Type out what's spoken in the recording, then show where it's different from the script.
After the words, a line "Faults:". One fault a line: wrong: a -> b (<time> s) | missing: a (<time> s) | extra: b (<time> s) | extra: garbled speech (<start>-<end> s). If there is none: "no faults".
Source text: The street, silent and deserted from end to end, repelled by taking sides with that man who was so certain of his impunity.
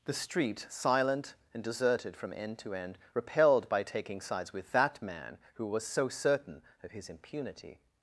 The street, silent and deserted from end to end, repelled by taking sides with that man who was so certain of his impunity.
Faults:
no faults